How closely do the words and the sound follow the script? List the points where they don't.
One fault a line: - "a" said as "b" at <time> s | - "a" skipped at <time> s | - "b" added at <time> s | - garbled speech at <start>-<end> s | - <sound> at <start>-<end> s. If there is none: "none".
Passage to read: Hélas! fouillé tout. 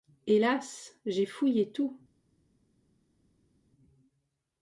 - "j'ai" added at 1.1 s